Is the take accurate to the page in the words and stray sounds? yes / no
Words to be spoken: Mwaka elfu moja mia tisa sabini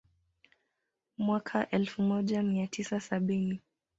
yes